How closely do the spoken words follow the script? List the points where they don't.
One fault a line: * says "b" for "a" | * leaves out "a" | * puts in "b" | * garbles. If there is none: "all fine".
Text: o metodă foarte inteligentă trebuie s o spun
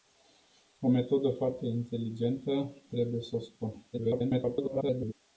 * garbles